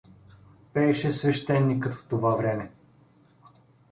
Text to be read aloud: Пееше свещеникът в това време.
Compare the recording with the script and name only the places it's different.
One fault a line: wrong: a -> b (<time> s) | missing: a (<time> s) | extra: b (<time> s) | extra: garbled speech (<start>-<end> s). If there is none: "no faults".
no faults